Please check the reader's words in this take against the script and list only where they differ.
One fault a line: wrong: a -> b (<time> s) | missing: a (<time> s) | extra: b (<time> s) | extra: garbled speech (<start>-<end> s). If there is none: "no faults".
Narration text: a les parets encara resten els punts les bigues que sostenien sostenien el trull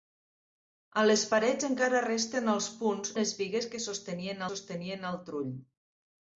no faults